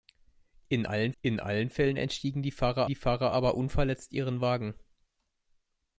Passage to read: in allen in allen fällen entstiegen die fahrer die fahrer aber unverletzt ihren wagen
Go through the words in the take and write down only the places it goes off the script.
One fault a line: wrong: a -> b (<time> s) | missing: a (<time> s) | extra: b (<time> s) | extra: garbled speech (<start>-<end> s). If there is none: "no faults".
no faults